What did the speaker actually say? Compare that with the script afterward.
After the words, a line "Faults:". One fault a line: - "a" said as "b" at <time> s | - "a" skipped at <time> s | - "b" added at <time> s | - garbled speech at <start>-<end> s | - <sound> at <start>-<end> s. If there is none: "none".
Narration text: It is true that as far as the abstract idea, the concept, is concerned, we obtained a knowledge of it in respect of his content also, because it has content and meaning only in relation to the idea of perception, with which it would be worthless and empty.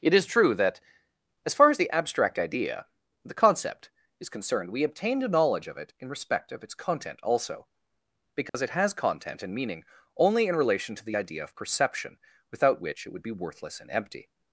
It is true that as far as the abstract idea, the concept, is concerned, we obtained a knowledge of it in respect of its content also, because it has content and meaning only in relation to the idea of perception, without which it would be worthless and empty.
Faults:
- "his" said as "its" at 6.6 s
- dropout at 8.5-8.5 s
- "with" said as "without" at 12.5 s